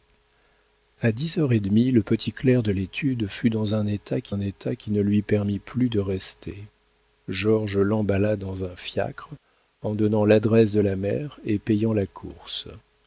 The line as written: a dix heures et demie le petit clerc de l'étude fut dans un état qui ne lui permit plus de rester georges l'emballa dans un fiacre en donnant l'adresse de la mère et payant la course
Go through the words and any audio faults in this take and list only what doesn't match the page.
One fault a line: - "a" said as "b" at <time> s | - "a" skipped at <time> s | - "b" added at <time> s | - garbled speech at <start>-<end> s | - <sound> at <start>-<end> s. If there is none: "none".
- "un état qui" added at 4.3 s